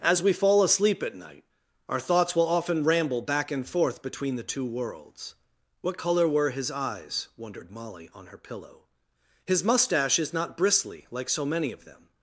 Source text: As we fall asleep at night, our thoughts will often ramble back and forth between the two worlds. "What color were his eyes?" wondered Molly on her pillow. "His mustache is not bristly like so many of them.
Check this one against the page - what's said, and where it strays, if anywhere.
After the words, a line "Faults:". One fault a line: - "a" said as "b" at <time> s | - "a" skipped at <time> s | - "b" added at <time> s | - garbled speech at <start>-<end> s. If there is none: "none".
As we fall asleep at night, our thoughts will often ramble back and forth between the two worlds. "What color were his eyes?" wondered Molly on her pillow. "His mustache is not bristly like so many of them.
Faults:
none